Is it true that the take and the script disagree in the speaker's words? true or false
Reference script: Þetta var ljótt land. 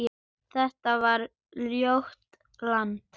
false